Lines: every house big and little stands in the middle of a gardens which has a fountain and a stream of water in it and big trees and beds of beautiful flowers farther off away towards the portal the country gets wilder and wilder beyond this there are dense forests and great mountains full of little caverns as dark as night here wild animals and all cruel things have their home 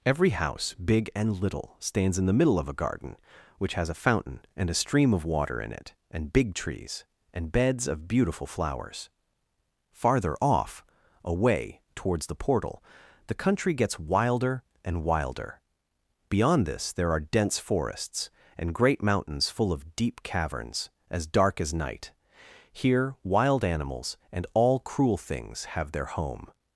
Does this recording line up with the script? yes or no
no